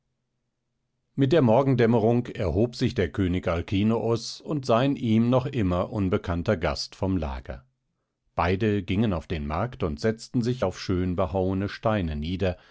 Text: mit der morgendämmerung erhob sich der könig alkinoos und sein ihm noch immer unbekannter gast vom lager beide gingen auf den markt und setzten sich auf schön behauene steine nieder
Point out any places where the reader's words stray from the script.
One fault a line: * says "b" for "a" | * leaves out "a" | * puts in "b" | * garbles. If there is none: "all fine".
all fine